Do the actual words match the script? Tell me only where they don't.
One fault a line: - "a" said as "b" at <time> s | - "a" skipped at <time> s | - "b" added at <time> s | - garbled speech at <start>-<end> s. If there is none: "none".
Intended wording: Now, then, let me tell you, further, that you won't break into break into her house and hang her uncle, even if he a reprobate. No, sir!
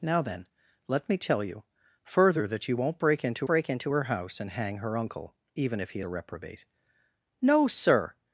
none